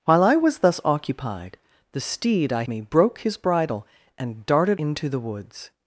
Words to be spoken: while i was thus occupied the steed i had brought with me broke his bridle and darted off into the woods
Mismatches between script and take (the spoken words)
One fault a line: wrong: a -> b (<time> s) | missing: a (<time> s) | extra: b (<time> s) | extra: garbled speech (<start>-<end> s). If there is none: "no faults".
missing: had brought with (2.6 s)
missing: off (4.8 s)